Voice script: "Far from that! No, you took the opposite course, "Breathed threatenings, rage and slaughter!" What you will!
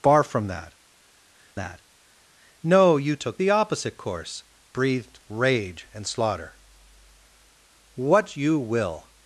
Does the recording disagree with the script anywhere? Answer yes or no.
yes